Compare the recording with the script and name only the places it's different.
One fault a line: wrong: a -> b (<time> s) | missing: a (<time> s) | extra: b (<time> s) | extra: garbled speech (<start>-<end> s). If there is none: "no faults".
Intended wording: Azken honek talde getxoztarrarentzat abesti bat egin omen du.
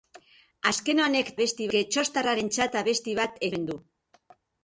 wrong: talde -> abesti (1.4 s)
missing: egin (3.5 s)